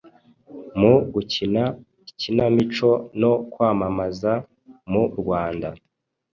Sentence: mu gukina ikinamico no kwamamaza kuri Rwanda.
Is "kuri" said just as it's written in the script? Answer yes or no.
no